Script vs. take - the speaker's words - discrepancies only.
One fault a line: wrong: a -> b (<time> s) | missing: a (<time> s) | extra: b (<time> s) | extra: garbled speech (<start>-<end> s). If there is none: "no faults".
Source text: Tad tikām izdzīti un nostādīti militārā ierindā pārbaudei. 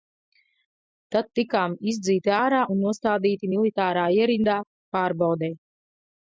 extra: ārā (2.4 s)